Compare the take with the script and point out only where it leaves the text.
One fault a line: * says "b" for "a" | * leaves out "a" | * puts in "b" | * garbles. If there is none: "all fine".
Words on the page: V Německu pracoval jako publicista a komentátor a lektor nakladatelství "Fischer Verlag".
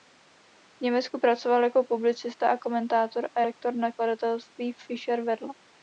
all fine